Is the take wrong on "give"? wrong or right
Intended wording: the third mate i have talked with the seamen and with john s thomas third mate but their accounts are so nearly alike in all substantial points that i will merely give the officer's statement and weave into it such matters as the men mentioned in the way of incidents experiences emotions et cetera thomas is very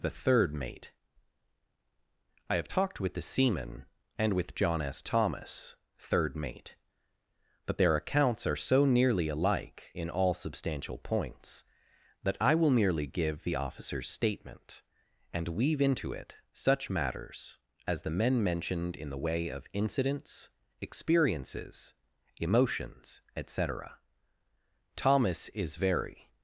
right